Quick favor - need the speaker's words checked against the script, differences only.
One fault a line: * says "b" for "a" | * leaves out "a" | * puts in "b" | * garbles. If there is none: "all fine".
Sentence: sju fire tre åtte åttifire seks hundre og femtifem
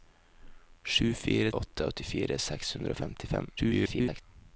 * leaves out "tre"
* garbles